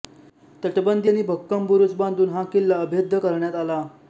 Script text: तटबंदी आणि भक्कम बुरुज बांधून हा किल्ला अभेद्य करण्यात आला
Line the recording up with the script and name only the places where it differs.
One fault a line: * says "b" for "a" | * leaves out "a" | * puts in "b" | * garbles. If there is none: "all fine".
all fine